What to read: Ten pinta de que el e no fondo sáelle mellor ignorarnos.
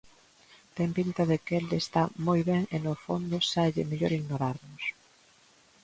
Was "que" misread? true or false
false